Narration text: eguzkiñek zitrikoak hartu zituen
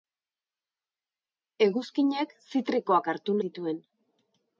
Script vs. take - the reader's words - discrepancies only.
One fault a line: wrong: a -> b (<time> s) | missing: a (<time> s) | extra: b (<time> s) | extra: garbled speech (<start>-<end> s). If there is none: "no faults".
no faults